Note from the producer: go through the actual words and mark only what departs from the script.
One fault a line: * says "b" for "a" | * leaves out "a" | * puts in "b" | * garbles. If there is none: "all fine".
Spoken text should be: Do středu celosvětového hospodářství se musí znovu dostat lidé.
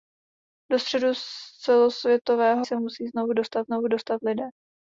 * leaves out "hospodářství"
* puts in "znovu dostat"